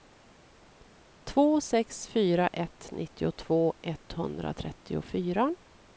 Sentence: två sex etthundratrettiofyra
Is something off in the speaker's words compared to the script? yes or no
yes